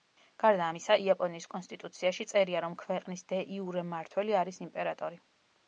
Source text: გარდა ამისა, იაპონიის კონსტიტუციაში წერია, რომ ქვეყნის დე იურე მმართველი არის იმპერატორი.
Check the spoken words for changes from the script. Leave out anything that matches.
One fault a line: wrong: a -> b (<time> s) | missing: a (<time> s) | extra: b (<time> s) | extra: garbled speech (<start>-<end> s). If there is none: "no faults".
no faults